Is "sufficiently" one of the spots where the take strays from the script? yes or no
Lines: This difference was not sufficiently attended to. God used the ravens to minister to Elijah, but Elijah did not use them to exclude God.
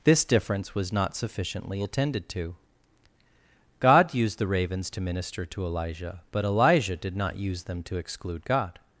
no